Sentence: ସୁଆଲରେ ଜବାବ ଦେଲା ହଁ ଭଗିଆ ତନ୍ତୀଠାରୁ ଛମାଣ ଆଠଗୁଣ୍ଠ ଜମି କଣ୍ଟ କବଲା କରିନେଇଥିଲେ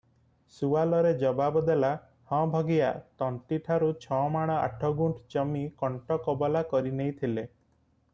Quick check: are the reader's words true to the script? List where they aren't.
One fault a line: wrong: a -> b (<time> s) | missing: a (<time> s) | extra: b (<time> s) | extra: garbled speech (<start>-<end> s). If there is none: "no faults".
no faults